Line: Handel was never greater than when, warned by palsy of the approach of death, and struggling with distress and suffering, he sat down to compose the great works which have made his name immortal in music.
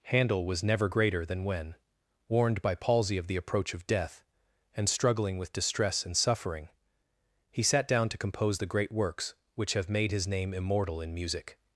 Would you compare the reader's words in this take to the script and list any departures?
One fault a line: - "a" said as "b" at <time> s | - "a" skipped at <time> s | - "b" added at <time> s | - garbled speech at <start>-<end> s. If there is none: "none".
none